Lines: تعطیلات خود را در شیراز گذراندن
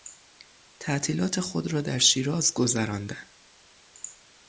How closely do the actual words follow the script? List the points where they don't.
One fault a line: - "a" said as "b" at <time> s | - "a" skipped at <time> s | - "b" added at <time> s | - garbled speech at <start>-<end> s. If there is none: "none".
none